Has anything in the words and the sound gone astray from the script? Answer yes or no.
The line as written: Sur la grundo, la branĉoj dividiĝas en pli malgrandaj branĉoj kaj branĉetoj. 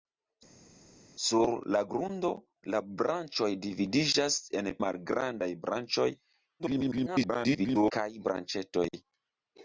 yes